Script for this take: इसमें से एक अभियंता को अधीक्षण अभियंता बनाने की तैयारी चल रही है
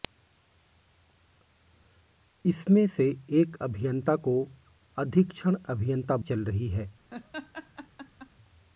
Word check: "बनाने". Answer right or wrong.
wrong